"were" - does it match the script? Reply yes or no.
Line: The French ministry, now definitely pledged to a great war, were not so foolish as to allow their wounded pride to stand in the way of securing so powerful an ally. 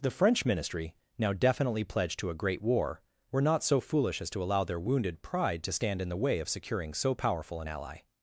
yes